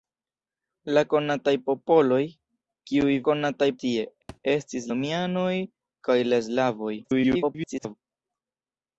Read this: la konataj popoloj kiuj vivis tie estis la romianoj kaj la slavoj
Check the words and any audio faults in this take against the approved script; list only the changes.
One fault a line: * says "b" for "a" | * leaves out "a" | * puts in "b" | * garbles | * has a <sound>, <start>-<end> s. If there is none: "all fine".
* says "konataj" for "vivis"
* has a thud, 4.3-4.4 s
* leaves out "la"
* garbles